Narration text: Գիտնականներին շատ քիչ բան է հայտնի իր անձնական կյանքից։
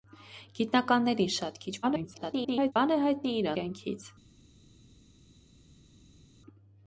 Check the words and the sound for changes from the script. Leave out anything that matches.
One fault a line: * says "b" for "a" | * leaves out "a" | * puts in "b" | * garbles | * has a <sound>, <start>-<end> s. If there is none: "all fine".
* garbles
* leaves out "անձնական"